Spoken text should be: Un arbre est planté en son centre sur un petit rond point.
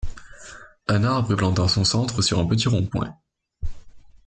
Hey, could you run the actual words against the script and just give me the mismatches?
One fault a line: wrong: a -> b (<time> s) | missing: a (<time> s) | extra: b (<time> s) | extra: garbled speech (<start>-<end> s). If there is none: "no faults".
no faults